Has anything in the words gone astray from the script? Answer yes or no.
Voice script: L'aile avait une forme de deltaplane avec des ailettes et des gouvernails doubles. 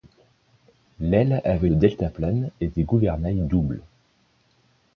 yes